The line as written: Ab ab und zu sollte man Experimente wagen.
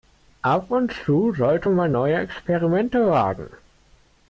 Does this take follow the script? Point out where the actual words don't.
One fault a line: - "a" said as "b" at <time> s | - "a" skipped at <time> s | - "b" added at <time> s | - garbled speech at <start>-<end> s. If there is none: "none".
- "ab" skipped at 0.7 s
- "neue" added at 1.9 s